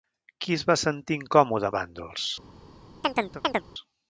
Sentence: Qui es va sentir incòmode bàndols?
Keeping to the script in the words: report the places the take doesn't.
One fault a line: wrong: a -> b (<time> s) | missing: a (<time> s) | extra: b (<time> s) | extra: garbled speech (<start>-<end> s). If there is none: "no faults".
no faults